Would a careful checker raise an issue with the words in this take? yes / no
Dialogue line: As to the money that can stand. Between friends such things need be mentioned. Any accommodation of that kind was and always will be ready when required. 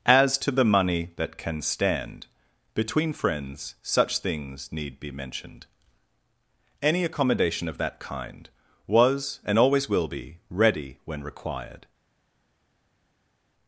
no